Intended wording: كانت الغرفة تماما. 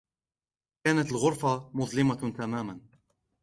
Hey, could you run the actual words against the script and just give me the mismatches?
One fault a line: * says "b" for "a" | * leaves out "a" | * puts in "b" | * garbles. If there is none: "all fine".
* puts in "مظلمة"